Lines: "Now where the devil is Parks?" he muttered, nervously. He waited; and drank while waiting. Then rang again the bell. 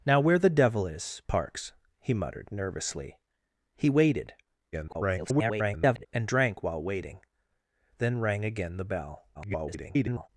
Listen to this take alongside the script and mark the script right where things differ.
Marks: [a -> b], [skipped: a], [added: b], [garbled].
"Now where the devil is Parks?" he muttered, nervously. He waited; [garbled] and drank while waiting. Then rang again the bell. [garbled]